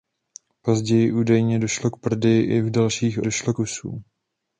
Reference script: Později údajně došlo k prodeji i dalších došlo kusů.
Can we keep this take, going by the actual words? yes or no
yes